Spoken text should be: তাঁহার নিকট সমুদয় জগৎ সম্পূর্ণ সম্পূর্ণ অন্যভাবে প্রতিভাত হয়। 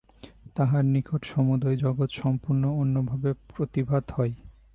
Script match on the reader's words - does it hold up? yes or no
no